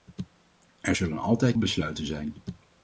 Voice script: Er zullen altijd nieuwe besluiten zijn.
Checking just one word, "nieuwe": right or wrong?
wrong